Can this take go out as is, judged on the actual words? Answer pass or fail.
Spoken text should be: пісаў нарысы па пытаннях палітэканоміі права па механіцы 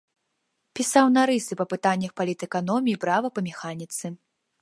pass